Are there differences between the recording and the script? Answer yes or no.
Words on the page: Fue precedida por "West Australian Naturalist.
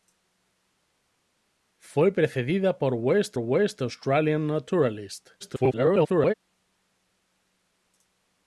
yes